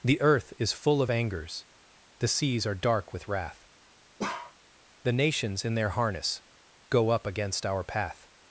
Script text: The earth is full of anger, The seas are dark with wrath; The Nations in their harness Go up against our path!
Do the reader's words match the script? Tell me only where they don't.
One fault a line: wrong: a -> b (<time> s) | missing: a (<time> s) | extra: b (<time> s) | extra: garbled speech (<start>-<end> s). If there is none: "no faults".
wrong: anger -> angers (1.1 s)